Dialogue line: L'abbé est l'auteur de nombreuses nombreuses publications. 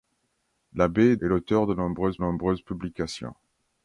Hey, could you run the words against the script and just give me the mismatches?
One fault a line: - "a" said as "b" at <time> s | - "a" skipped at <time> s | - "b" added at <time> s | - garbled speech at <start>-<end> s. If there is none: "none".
none